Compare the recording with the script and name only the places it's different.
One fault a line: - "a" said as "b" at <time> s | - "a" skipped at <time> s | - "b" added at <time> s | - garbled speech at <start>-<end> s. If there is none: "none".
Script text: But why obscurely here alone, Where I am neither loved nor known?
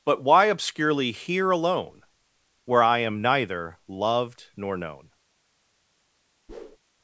none